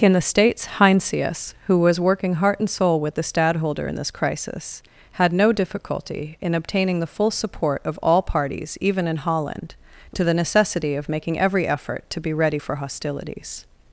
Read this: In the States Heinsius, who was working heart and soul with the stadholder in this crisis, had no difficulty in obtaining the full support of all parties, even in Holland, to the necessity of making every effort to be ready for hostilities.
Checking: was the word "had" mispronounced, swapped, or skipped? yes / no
no